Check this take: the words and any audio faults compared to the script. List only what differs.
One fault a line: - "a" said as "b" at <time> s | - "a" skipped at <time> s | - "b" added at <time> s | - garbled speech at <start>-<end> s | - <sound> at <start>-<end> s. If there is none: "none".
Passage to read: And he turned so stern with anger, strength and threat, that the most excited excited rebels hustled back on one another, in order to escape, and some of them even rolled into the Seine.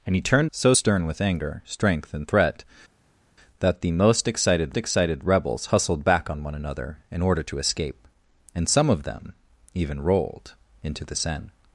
none